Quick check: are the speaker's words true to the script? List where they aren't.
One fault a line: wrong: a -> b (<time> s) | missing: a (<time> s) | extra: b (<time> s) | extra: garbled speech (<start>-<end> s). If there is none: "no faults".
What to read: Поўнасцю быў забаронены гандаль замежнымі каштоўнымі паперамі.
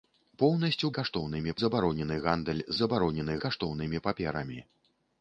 wrong: быў -> каштоўнымі (1.0 s)
wrong: замежнымі -> забаронены (2.8 s)